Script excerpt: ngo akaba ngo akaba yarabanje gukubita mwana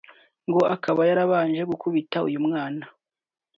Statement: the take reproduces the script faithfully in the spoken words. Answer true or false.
false